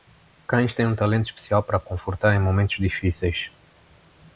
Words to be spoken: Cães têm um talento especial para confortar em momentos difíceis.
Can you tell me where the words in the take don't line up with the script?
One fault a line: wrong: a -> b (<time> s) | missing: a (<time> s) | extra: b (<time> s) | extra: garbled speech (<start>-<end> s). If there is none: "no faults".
no faults